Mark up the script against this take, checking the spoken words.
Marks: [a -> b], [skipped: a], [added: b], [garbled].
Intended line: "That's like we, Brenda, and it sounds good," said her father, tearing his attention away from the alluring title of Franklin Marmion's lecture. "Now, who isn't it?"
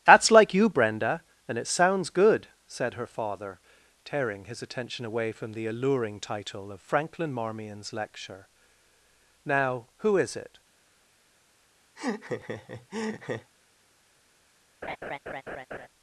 "That's like [we, -> you] Brenda, and it sounds good," said her father, tearing his attention away from the alluring title of Franklin Marmion's lecture. "Now, who [isn't -> is] it?"